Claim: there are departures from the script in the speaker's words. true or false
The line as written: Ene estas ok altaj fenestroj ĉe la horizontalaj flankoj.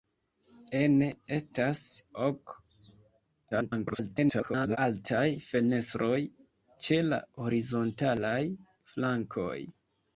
true